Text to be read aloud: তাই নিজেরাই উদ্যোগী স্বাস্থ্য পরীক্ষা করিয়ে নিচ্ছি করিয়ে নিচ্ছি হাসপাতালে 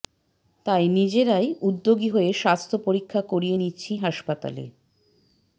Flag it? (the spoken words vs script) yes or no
yes